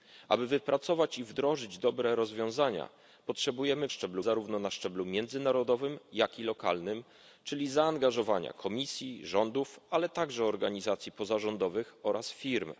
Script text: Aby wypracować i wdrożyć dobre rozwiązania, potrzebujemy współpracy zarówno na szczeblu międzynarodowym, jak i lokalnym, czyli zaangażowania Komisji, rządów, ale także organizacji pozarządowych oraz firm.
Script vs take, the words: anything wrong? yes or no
yes